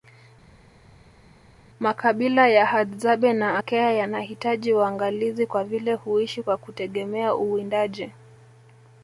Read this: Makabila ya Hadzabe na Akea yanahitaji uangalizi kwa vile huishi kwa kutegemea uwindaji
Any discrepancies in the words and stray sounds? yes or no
no